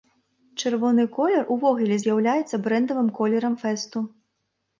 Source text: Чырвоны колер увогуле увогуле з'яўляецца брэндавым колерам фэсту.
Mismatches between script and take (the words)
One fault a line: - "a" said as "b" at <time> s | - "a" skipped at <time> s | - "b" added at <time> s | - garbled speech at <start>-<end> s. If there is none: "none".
- "увогуле" skipped at 2.0 s